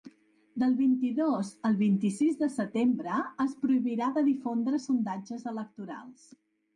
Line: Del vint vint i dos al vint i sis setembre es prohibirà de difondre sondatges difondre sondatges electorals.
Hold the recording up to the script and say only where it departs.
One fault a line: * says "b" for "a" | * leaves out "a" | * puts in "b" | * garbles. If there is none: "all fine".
* leaves out "vint"
* puts in "de"
* leaves out "difondre sondatges"